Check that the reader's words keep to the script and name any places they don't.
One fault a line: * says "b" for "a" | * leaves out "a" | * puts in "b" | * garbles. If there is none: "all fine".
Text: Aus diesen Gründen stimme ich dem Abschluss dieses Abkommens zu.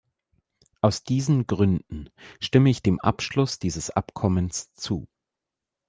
all fine